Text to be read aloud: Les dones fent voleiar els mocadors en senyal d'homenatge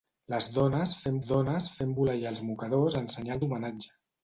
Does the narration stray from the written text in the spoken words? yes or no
yes